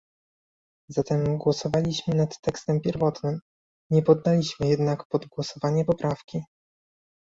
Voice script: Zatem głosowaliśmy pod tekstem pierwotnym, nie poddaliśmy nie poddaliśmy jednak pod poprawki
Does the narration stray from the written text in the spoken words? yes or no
yes